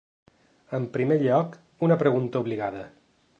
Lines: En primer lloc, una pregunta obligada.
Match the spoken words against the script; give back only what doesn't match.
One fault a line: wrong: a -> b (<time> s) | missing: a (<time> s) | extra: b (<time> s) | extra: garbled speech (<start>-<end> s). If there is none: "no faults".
no faults